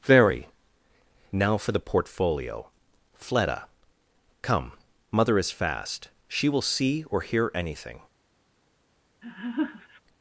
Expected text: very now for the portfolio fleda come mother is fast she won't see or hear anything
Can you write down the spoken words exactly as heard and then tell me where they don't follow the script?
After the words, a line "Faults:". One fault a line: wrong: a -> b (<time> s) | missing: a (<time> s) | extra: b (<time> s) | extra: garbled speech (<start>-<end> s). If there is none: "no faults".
very now for the portfolio fleda come mother is fast she will see or hear anything
Faults:
wrong: won't -> will (6.5 s)